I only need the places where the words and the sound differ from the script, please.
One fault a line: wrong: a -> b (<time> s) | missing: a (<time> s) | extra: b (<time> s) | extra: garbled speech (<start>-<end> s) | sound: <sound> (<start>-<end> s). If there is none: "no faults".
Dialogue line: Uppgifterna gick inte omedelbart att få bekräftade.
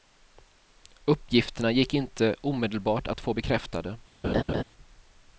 sound: laugh (4.2-4.6 s)